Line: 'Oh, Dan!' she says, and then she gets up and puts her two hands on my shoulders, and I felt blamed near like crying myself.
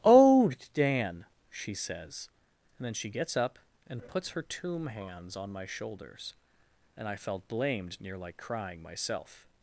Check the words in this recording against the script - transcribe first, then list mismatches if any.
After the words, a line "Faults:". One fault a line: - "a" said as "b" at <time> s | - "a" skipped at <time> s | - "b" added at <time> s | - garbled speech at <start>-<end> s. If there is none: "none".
'Oh, Dan!' she says, and then she gets up and puts her tomb hands on my shoulders, and I felt blamed near like crying myself.
Faults:
- "two" said as "tomb" at 4.4 s